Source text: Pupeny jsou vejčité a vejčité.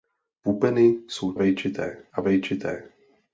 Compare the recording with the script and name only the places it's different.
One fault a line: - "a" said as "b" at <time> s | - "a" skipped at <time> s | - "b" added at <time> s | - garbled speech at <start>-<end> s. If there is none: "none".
none